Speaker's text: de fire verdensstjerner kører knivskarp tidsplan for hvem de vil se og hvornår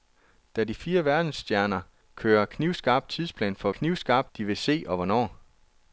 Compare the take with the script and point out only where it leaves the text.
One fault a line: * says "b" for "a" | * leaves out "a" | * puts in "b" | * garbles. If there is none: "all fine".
* says "knivskarp" for "hvem"